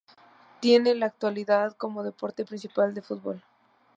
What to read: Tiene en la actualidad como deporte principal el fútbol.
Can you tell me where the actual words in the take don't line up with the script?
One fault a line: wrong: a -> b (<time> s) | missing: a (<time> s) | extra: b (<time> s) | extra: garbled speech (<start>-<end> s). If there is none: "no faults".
no faults